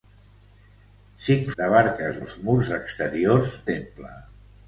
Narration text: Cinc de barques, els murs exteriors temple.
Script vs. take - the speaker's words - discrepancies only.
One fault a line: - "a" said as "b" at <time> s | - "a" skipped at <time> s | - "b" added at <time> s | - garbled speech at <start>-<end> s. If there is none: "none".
none